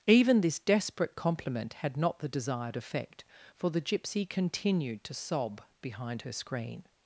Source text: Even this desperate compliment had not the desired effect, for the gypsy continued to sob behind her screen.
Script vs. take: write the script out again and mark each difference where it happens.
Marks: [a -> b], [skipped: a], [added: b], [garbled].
Even this desperate compliment had not the desired effect, for the gypsy continued to sob behind her screen.